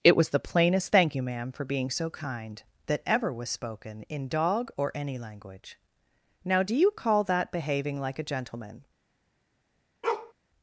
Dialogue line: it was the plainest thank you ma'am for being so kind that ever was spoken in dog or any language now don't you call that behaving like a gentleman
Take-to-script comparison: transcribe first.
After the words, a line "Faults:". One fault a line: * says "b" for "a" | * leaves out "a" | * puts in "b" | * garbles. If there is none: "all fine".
it was the plainest thank you ma'am for being so kind that ever was spoken in dog or any language now do you call that behaving like a gentleman
Faults:
* says "do" for "don't"